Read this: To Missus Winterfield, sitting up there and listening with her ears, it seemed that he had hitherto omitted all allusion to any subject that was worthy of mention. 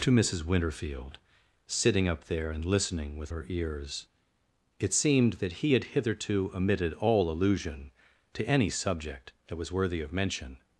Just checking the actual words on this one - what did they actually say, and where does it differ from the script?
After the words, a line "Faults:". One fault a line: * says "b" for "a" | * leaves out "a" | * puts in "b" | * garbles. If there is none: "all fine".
To Missus Winterfield, sitting up there and listening with her ears, it seemed that he had hitherto omitted all allusion to any subject that was worthy of mention.
Faults:
all fine